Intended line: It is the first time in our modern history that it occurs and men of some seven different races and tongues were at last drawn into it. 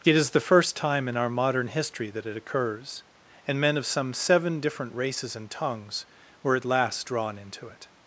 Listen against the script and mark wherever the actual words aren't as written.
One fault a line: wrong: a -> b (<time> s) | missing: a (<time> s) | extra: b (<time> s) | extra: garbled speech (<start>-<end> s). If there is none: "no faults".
no faults